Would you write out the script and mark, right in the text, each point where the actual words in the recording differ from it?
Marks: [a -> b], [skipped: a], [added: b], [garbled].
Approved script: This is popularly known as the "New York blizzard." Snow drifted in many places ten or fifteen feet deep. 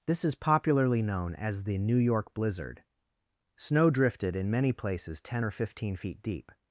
This is popularly known as the "New York blizzard." Snow drifted in many places ten or fifteen feet deep.